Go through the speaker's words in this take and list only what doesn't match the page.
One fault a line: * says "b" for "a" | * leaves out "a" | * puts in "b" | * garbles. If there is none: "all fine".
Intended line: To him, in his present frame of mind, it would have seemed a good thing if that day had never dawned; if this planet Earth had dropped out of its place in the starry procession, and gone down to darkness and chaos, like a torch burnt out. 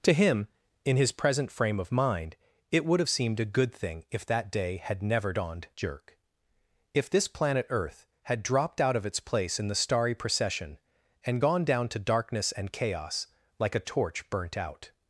* puts in "jerk"